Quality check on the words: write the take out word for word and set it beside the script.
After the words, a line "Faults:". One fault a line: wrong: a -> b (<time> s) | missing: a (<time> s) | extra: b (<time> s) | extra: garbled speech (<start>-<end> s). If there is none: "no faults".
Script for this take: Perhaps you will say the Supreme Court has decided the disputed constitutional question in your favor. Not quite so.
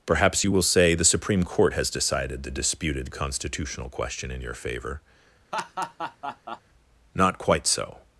Perhaps you will say the Supreme Court has decided the disputed constitutional question in your favor. Not quite so.
Faults:
no faults